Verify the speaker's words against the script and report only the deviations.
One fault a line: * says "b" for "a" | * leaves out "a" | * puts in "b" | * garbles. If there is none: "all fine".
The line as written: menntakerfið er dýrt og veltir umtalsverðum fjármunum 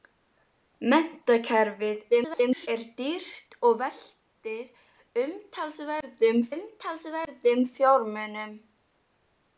* garbles
* puts in "umtalsverðum"